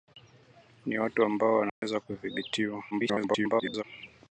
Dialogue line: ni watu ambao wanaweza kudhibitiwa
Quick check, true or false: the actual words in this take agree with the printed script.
false